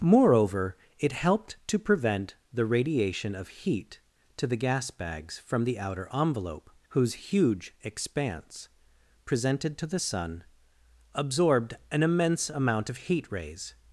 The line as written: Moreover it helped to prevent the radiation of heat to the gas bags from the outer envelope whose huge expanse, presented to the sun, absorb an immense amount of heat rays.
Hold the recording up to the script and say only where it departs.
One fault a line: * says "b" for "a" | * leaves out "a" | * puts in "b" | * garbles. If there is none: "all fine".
* says "absorbed" for "absorb"